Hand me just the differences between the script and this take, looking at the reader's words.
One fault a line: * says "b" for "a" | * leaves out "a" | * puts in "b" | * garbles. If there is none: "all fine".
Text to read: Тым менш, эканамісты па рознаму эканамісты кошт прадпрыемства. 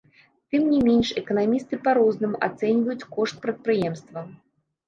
* puts in "не"
* says "ацэньваюць" for "эканамісты"